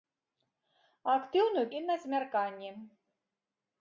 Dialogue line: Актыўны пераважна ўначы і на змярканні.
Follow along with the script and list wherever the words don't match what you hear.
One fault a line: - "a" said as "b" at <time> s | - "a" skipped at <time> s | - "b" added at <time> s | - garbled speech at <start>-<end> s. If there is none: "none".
- "пераважна ўначы" skipped at 1.6 s